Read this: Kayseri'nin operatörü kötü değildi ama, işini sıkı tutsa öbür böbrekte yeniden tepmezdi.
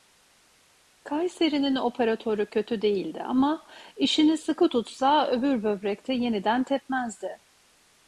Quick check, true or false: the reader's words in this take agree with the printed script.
true